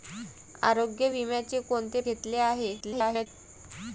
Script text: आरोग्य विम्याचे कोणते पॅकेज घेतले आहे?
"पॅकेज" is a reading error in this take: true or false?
true